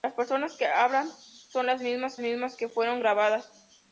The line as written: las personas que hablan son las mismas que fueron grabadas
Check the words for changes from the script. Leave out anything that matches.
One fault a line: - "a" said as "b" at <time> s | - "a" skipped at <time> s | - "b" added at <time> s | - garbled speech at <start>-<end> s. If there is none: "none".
- "mismas" added at 2.2 s